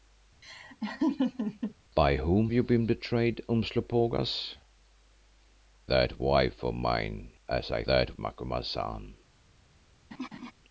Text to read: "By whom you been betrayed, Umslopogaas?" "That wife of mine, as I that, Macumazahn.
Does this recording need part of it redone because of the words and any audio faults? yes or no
yes